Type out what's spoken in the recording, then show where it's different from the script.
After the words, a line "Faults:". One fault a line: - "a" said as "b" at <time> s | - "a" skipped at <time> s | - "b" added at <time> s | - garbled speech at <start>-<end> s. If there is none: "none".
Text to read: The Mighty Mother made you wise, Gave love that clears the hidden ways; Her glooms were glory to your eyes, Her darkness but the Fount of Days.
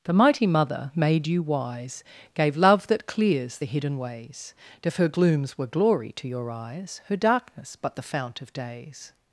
The Mighty Mother made you wise, Gave love that clears the hidden ways; if Her glooms were glory to your eyes, Her darkness but the Fount of Days.
Faults:
- "if" added at 4.8 s